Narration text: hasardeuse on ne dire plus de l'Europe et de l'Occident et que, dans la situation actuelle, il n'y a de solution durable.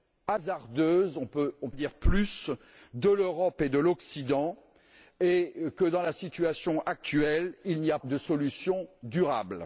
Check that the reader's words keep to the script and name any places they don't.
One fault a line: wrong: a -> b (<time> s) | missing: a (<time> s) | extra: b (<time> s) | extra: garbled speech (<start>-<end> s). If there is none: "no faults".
no faults